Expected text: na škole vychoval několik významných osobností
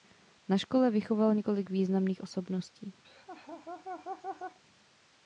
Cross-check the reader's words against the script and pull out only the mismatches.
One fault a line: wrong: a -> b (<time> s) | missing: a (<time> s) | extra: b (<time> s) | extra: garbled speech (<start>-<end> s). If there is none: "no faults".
no faults